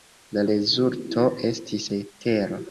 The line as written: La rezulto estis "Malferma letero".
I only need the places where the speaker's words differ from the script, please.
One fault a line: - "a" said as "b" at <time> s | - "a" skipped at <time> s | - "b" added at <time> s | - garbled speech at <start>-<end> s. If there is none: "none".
- "Malferma" skipped at 1.9 s